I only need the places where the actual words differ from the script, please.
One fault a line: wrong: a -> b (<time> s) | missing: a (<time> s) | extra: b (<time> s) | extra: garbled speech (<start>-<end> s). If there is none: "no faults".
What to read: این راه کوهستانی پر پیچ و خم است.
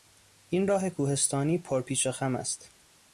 no faults